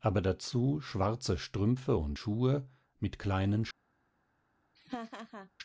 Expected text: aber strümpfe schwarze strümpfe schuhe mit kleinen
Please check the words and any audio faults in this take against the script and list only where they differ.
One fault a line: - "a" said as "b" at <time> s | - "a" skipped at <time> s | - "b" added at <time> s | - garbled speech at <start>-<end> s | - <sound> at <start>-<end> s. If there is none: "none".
- "strümpfe" said as "dazu" at 0.2 s
- "und" added at 1.9 s
- laugh at 4.8-5.5 s